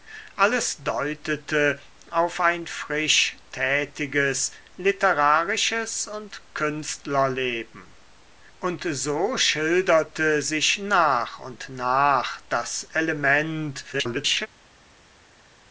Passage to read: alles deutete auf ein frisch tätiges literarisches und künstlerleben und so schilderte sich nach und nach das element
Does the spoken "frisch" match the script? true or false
true